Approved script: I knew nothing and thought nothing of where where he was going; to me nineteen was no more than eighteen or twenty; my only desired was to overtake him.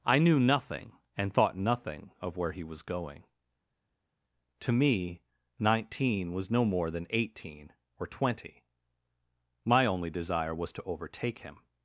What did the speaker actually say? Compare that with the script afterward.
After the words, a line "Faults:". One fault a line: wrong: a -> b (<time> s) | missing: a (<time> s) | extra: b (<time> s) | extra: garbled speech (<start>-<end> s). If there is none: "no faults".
I knew nothing and thought nothing of where he was going; to me nineteen was no more than eighteen or twenty; my only desire was to overtake him.
Faults:
missing: where (2.5 s)
wrong: desired -> desire (10.1 s)